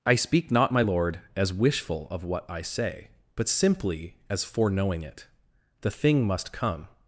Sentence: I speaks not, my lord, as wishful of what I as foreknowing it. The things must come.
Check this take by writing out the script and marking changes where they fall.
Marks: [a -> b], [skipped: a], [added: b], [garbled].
I [speaks -> speak] not, my lord, as wishful of what I [added: say but simply] as foreknowing it. The [things -> thing] must come.